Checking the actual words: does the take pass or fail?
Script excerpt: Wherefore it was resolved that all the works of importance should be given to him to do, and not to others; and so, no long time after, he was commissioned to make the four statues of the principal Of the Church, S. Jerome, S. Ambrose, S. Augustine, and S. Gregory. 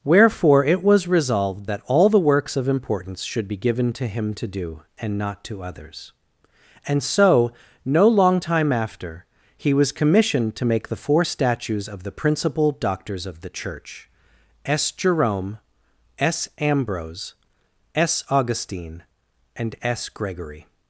fail